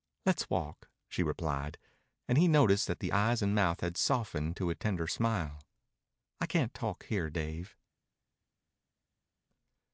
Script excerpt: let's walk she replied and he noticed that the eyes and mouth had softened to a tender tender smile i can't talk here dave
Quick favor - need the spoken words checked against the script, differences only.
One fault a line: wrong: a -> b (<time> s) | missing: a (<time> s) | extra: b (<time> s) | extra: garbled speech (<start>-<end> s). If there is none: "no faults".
missing: tender (5.1 s)